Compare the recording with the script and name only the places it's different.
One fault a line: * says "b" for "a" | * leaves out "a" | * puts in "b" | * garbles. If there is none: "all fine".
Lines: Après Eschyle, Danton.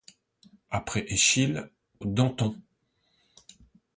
all fine